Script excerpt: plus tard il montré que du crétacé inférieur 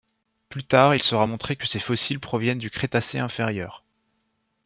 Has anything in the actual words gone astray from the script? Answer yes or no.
yes